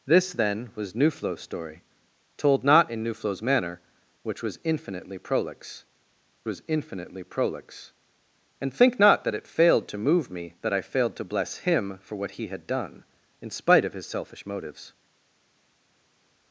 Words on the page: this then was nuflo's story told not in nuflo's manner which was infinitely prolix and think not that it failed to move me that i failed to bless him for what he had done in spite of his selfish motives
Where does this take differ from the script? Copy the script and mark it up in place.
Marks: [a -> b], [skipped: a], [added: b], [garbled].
this then was nuflo's story told not in nuflo's manner which was infinitely prolix [added: was infinitely prolix] and think not that it failed to move me that i failed to bless him for what he had done in spite of his selfish motives